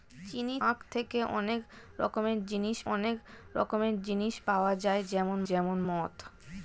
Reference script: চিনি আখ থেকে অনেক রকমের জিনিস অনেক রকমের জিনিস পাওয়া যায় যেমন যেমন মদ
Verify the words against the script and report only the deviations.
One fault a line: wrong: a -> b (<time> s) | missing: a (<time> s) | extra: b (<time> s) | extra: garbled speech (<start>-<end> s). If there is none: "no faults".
no faults